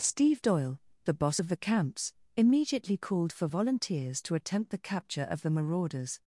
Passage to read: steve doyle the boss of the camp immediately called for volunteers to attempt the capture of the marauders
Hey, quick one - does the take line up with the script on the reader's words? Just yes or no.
no